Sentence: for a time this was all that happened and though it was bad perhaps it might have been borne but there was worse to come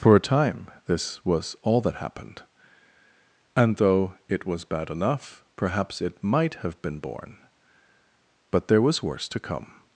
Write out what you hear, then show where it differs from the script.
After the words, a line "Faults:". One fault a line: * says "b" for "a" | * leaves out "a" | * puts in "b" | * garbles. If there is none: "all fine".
for a time this was all that happened and though it was bad enough perhaps it might have been borne but there was worse to come
Faults:
* puts in "enough"